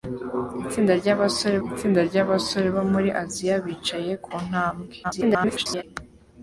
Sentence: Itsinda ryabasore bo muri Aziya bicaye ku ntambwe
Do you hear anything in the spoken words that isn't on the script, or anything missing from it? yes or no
yes